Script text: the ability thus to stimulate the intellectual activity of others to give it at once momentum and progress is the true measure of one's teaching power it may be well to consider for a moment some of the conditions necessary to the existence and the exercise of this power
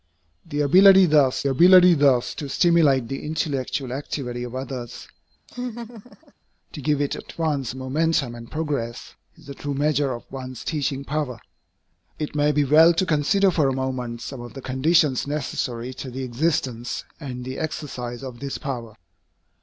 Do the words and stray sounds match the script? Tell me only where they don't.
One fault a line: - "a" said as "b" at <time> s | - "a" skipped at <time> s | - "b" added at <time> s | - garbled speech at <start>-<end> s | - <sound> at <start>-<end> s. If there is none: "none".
- "ability thus" added at 1.5 s
- laugh at 5.5-6.3 s